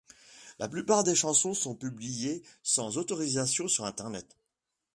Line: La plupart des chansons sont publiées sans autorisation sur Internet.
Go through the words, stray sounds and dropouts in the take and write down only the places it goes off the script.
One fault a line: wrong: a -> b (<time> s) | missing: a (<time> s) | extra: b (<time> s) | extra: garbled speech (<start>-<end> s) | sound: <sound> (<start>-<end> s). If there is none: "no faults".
no faults